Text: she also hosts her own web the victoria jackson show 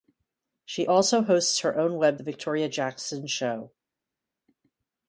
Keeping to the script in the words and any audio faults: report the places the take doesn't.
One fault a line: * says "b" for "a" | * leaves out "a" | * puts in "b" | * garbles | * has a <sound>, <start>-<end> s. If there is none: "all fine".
all fine